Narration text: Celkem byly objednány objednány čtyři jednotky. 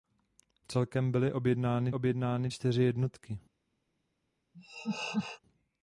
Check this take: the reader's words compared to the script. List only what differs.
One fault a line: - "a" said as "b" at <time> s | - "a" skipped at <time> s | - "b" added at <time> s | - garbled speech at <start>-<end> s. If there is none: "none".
none